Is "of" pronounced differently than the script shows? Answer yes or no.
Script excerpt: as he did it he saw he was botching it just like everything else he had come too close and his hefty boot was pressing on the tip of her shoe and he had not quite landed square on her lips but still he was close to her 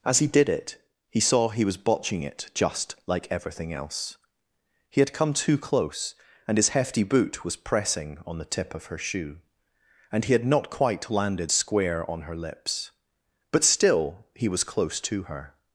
no